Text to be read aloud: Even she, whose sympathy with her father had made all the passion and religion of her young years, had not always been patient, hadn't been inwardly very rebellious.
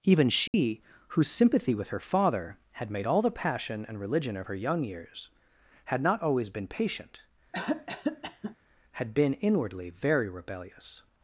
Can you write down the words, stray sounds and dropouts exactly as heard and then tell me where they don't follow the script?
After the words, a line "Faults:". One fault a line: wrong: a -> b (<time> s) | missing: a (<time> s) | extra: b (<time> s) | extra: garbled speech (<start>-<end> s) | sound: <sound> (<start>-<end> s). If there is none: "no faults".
Even she, whose sympathy with her father had made all the passion and religion of her young years, had not always been patient, had been inwardly very rebellious.
Faults:
sound: dropout (0.5-0.5 s)
sound: cough (7.5-8.6 s)
wrong: hadn't -> had (8.9 s)